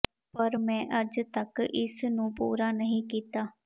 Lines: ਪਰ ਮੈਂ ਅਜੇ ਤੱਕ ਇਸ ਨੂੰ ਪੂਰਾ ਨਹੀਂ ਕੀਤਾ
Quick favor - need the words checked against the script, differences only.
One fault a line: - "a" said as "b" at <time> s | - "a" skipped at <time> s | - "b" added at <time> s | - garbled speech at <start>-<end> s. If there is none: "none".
none